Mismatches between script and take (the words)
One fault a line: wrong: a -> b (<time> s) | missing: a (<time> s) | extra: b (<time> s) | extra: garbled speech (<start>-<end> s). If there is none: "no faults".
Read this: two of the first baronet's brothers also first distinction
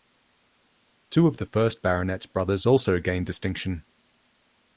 wrong: first -> gained (3.0 s)